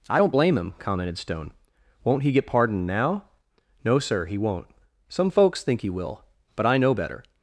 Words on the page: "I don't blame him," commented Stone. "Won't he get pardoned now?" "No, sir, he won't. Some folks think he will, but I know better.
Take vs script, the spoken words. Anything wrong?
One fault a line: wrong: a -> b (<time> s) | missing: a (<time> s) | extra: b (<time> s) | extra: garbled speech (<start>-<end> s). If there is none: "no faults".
no faults